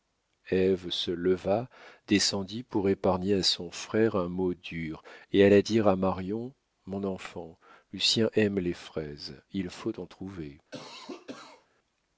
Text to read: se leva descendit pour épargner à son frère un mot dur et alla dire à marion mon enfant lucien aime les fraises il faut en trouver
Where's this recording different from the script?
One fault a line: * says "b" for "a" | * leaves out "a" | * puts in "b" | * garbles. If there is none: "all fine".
all fine